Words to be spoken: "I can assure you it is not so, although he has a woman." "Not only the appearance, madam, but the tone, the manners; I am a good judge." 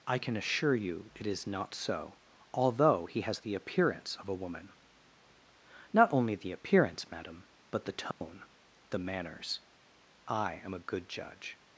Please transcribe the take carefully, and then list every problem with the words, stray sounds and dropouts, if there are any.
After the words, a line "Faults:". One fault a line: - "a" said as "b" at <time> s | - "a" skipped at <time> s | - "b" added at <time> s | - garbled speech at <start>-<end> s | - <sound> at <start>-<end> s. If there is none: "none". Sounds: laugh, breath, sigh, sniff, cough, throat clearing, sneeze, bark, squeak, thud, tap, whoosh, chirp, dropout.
"I can assure you it is not so, although he has the appearance of a woman." "Not only the appearance, madam, but the tone, the manners; I am a good judge."
Faults:
- "the appearance of" added at 3.4 s
- dropout at 8.1-8.2 s